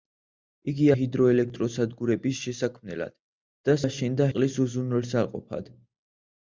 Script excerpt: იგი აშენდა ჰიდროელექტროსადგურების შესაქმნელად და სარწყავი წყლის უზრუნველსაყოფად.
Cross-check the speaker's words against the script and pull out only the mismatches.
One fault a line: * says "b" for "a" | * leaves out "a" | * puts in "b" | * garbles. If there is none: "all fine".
* leaves out "აშენდა"
* says "აშენდა" for "სარწყავი"